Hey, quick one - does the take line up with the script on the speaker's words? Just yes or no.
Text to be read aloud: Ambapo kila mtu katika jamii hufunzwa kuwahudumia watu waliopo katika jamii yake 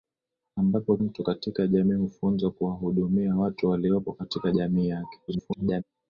no